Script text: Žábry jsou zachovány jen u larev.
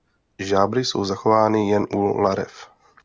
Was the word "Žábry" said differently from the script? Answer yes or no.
no